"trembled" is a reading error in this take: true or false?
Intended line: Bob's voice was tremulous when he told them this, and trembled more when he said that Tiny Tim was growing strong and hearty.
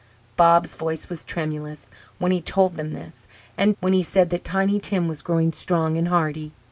true